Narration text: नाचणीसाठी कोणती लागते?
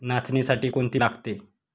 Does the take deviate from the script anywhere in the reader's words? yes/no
no